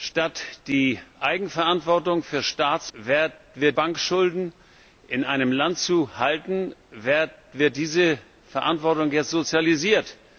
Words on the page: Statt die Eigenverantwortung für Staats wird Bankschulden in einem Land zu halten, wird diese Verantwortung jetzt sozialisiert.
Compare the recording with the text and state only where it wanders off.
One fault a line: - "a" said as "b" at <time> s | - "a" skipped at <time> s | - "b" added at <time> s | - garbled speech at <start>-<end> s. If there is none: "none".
none